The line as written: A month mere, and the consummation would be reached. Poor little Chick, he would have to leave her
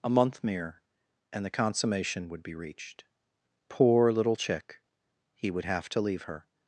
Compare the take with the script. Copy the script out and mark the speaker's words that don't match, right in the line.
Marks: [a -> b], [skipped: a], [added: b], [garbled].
A month mere, and the consummation would be reached. Poor little Chick, he would have to leave her